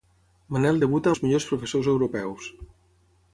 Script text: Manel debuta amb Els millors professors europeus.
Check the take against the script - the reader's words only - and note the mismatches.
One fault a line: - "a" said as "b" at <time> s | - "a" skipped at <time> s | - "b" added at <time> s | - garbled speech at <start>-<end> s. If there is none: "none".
- "amb" skipped at 1.1 s